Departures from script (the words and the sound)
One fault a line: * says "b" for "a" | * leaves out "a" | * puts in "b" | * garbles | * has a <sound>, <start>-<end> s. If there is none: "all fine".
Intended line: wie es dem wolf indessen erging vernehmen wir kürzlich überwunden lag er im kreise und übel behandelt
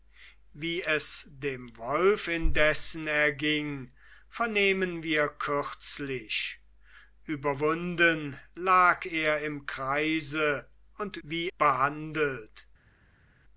* says "wie" for "übel"